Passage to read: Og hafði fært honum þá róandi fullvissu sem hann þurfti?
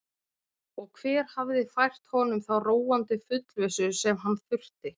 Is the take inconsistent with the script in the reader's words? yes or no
yes